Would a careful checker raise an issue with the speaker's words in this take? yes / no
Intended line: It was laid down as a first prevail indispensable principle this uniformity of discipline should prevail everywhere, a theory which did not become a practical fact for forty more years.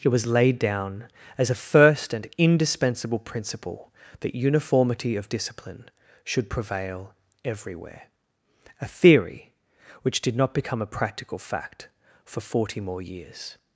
yes